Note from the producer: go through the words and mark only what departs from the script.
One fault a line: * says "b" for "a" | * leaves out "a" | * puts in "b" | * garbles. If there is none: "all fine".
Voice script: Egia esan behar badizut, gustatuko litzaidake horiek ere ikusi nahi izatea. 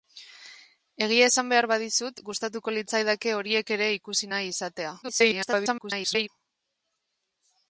* garbles